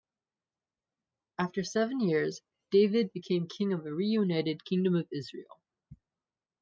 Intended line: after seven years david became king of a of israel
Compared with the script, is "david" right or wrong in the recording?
right